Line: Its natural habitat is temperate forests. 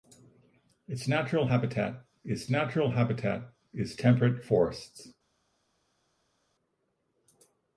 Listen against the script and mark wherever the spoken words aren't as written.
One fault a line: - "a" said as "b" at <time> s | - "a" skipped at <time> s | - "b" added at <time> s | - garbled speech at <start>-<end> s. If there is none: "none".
- "natural habitat is" added at 2.5 s